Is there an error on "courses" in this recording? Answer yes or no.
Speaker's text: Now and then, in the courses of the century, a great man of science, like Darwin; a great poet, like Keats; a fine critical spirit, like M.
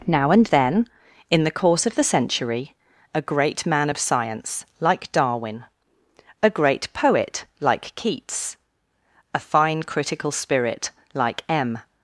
yes